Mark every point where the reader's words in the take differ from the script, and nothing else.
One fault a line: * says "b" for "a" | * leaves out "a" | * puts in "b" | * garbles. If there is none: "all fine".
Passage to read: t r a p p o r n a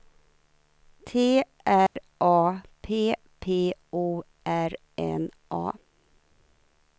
all fine